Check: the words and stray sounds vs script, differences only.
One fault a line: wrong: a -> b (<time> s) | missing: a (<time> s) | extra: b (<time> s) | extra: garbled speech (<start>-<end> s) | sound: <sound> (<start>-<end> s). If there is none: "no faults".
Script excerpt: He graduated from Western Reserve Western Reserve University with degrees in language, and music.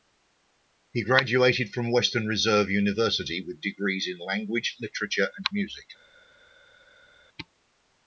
missing: Western Reserve (2.7 s)
extra: literature (4.8 s)